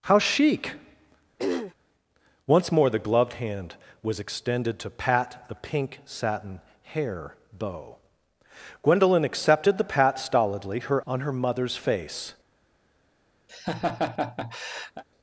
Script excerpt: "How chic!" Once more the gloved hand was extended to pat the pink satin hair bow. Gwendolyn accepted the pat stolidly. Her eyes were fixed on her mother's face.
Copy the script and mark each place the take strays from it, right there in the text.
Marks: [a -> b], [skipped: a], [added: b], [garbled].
"How chic!" Once more the gloved hand was extended to pat the pink satin hair bow. Gwendolyn accepted the pat stolidly. Her [skipped: eyes were fixed] on her mother's face.